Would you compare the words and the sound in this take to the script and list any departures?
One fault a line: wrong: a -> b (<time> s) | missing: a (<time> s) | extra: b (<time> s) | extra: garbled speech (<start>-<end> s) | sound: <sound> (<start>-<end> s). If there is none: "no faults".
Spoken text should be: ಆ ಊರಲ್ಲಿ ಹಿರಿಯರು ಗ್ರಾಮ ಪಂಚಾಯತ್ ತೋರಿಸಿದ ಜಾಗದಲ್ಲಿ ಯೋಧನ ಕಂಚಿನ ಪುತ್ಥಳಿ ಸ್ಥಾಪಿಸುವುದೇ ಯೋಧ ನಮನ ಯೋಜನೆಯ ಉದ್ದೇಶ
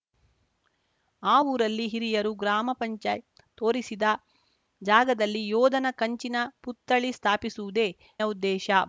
missing: ಯೋಧ ನಮನ ಯೋಜನೆಯ (7.9 s)